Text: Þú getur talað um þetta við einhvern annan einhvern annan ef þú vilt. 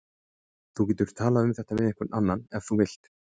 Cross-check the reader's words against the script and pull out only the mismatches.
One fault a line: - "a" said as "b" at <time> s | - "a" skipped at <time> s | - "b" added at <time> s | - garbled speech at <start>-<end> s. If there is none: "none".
- "einhvern annan" skipped at 2.4 s